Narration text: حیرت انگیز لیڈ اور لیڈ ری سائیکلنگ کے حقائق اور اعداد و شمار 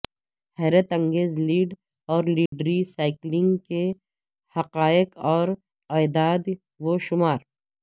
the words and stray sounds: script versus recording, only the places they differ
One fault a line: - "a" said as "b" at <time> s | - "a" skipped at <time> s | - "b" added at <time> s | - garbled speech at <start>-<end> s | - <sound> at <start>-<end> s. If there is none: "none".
- dropout at 2.5-2.5 s